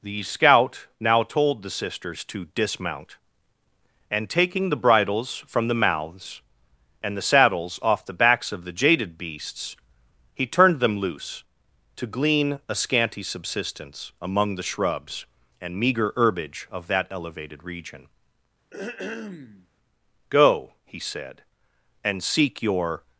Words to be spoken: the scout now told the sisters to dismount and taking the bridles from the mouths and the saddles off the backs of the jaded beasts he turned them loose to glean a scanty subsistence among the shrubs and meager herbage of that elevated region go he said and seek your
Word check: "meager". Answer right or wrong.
right